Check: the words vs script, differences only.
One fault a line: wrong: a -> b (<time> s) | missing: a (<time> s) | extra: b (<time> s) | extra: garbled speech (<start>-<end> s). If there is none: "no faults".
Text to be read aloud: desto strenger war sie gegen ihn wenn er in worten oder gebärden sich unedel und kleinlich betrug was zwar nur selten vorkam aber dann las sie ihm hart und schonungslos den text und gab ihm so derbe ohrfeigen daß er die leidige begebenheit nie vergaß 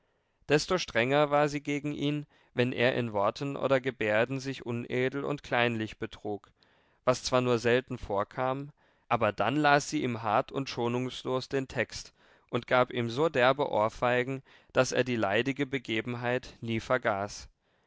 no faults